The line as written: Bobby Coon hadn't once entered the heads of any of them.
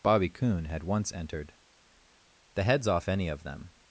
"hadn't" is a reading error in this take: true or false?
true